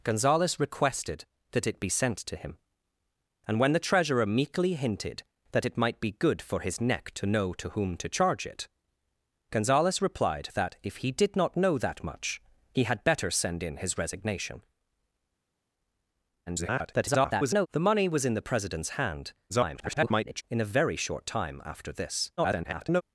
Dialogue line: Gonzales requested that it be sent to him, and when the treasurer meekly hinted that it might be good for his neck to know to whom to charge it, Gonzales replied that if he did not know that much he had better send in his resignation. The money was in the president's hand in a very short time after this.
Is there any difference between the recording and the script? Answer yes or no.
yes